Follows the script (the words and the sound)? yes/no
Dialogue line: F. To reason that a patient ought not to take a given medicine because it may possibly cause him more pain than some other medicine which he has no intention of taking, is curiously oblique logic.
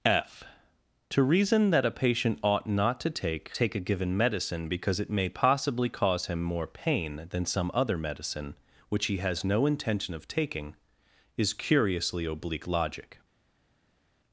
no